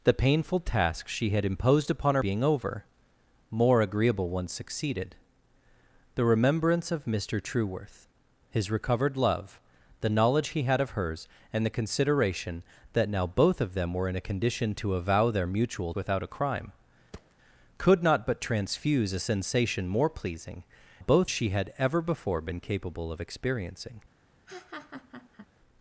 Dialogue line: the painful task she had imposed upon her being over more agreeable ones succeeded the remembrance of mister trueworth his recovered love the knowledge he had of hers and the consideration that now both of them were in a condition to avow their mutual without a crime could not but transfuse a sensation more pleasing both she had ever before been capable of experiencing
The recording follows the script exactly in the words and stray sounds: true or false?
false